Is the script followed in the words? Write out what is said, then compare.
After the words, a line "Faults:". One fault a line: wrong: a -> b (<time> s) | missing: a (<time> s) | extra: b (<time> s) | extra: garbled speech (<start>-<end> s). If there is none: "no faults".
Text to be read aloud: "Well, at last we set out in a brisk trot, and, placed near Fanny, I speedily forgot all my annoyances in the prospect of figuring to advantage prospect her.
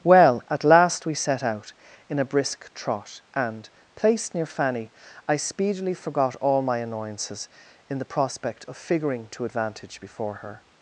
"Well, at last we set out in a brisk trot, and, placed near Fanny, I speedily forgot all my annoyances in the prospect of figuring to advantage before her.
Faults:
wrong: prospect -> before (10.0 s)